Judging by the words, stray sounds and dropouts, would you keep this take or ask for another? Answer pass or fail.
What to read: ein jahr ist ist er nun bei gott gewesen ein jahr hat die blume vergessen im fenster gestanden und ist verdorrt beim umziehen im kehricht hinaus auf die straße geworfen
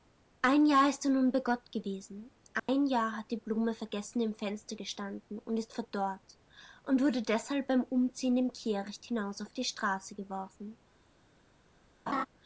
fail